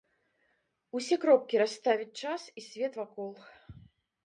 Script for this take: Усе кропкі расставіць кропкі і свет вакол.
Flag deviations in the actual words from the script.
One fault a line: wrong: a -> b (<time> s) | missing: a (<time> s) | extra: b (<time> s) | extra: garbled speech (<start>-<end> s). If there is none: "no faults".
wrong: кропкі -> час (2.2 s)